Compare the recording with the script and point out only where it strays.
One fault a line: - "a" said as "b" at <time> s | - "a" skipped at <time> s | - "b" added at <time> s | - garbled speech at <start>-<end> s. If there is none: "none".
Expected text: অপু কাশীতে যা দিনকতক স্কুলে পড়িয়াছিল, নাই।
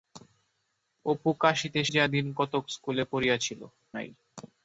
none